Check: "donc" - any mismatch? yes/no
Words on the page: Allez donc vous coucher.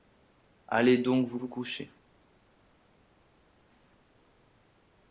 no